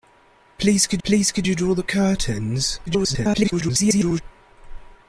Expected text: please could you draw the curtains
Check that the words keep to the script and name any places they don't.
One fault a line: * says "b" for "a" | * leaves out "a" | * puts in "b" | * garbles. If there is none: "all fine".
* puts in "please could"
* garbles